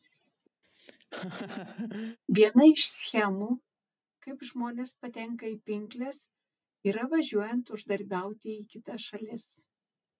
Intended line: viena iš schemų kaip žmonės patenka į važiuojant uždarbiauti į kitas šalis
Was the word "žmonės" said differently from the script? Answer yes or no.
no